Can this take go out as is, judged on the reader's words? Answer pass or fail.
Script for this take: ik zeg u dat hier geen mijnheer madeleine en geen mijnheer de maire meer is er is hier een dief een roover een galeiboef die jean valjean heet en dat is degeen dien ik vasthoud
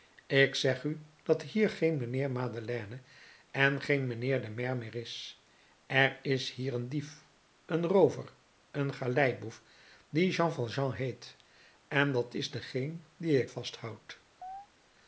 pass